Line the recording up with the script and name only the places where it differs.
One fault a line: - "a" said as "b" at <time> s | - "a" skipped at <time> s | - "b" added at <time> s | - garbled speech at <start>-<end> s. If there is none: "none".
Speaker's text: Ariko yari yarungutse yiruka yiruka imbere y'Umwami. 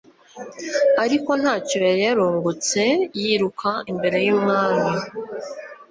- "ntacyo" added at 1.4 s
- "yiruka" skipped at 3.7 s